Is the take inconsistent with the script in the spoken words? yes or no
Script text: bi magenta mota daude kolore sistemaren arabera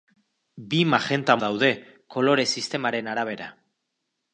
yes